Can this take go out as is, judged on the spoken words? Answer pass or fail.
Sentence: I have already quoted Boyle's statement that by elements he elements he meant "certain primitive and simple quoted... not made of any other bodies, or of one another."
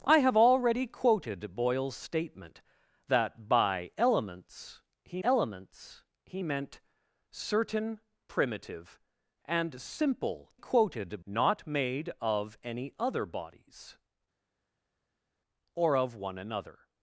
pass